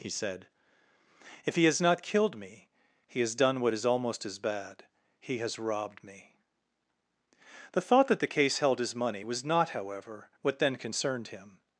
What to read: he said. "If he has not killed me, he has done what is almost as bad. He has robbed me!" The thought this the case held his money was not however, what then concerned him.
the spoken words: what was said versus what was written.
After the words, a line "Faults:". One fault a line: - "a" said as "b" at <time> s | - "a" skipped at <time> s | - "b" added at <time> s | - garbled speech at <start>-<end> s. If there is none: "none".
he said. "If he has not killed me, he has done what is almost as bad. He has robbed me!" The thought that the case held his money was not however, what then concerned him.
Faults:
- "this" said as "that" at 8.1 s